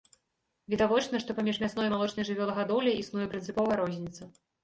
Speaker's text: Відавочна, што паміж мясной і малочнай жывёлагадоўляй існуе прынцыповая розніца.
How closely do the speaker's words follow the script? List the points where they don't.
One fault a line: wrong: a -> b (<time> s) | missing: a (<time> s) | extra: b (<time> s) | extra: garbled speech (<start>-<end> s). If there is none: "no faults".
no faults